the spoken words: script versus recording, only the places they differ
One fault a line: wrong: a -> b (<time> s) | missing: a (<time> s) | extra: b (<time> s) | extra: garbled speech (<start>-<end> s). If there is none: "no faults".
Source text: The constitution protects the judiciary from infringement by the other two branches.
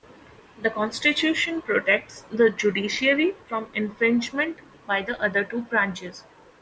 no faults